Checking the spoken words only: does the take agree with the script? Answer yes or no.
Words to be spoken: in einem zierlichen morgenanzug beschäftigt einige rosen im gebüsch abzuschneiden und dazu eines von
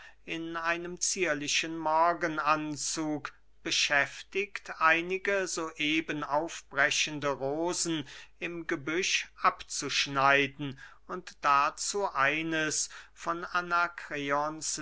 no